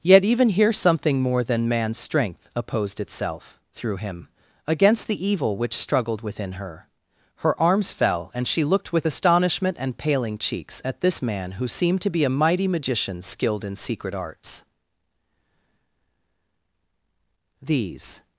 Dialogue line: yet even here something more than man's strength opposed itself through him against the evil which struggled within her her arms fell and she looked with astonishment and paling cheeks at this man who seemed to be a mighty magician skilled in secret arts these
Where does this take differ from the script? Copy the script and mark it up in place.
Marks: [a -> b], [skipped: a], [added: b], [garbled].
yet even here something more than man's strength opposed itself through him against the evil which struggled within her her arms fell and she looked with astonishment and paling cheeks at this man who seemed to be a mighty magician skilled in secret arts these